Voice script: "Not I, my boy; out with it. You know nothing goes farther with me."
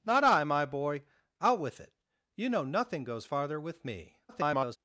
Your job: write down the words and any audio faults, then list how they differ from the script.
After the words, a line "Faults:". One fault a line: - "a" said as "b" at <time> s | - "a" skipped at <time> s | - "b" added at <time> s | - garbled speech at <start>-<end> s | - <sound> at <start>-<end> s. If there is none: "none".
"Not I, my boy; out with it. You know nothing goes farther with me." [garbled]
Faults:
- garbled speech at 4.3-4.8 s